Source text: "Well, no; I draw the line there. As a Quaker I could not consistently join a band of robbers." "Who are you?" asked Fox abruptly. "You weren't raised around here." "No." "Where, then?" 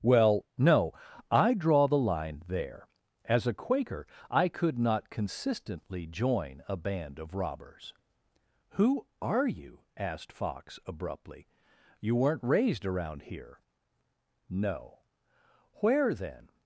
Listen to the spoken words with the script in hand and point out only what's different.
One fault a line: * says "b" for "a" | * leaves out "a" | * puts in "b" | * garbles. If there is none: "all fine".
all fine